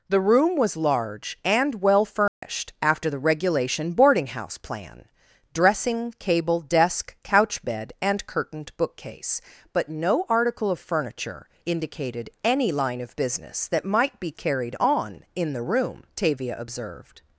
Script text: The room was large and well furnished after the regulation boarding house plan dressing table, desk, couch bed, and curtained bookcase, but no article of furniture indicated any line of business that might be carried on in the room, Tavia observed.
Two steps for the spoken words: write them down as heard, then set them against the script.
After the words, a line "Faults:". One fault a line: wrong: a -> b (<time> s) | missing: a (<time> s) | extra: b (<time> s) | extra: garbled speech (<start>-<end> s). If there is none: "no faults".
The room was large and well furnished after the regulation boarding house plan dressing cable, desk, couch bed, and curtained bookcase, but no article of furniture indicated any line of business that might be carried on in the room, Tavia observed.
Faults:
wrong: table -> cable (6.2 s)